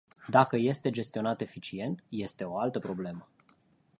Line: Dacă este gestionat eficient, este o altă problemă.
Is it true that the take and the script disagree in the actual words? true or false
false